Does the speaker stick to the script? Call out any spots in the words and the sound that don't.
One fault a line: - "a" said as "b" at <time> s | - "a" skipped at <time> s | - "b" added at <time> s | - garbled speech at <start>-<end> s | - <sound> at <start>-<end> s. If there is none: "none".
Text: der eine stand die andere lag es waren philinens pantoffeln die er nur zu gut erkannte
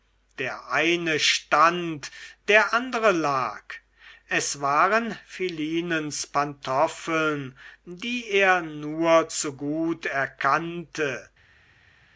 - "die" said as "der" at 2.5 s